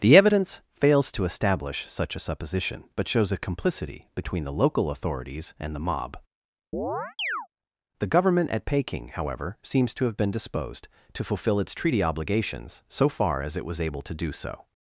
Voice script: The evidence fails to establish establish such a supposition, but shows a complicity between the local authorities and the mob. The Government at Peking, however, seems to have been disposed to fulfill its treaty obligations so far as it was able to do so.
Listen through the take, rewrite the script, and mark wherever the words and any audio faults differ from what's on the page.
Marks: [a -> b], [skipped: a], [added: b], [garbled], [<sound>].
The evidence fails to establish [skipped: establish] such a supposition, but shows a complicity between the local authorities and the mob. [chirp] The Government at Peking, however, seems to have been disposed to fulfill its treaty obligations so far as it was able to do so.